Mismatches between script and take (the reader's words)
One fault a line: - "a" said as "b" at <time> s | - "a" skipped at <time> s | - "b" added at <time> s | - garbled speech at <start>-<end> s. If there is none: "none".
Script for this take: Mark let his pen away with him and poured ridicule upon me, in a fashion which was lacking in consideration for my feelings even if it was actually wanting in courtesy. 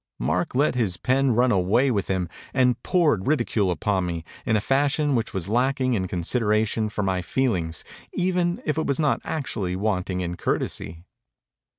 - "run" added at 1.4 s
- "not" added at 9.0 s